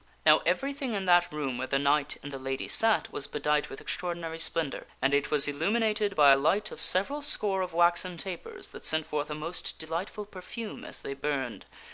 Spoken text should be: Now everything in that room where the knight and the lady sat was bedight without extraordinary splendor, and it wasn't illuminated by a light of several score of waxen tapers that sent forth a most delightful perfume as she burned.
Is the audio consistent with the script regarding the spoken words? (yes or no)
no